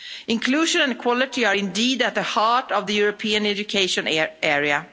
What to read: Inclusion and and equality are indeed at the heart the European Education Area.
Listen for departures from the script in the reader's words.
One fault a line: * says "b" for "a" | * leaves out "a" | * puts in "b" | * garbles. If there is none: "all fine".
* leaves out "and"
* puts in "of"